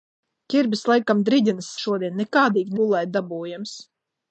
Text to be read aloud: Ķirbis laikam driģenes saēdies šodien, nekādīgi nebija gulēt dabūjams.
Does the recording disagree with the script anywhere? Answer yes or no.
yes